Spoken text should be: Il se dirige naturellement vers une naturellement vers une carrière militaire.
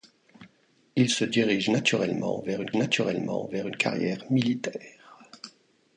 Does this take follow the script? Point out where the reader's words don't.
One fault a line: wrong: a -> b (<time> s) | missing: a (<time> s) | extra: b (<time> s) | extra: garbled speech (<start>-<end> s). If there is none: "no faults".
no faults